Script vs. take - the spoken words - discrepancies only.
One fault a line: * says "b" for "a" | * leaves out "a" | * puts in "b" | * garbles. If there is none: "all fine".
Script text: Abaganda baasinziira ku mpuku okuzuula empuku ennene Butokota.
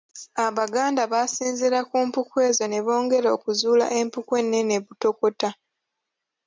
* puts in "ezo ne bongera"